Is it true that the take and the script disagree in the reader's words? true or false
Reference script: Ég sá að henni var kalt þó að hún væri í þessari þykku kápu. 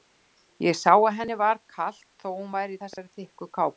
false